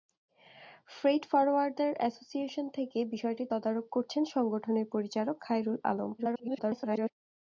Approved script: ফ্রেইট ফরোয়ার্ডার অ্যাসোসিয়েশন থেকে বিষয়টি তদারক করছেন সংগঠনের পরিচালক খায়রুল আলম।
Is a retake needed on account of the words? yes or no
yes